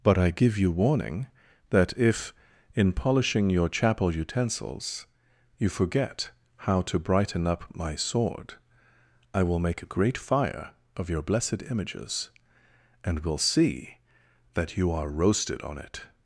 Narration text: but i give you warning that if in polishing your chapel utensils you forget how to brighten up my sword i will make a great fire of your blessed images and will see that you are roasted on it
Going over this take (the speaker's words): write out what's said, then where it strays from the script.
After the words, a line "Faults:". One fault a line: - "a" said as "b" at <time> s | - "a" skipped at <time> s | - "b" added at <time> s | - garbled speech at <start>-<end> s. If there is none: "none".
but i give you warning that if in polishing your chapel utensils you forget how to brighten up my sword i will make a great fire of your blessed images and will see that you are roasted on it
Faults:
none